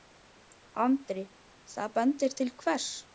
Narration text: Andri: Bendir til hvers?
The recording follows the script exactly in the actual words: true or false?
false